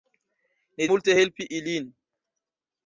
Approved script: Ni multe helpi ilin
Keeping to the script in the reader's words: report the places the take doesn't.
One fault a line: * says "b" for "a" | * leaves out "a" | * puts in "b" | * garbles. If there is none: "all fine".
all fine